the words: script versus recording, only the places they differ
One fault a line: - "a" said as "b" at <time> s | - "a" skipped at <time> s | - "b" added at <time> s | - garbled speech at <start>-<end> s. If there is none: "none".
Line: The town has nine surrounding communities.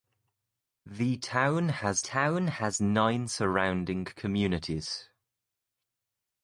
- "town has" added at 2.0 s